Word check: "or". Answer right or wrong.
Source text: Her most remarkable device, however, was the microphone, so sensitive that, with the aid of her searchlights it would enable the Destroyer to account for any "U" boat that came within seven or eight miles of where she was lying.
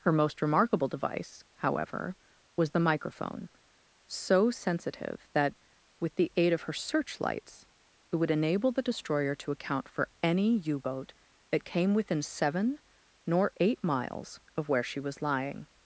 wrong